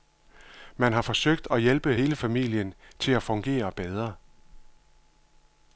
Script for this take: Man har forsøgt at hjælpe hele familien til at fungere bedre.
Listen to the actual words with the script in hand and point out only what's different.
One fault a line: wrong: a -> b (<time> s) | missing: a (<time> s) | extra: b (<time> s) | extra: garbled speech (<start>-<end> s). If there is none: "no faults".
no faults